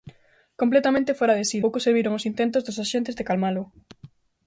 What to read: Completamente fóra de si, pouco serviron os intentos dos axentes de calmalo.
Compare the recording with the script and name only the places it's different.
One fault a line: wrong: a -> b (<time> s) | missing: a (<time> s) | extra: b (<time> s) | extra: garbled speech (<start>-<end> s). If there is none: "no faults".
no faults